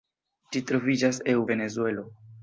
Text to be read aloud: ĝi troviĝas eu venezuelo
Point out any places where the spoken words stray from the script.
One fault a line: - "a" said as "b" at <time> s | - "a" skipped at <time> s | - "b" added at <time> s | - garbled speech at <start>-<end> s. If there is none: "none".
none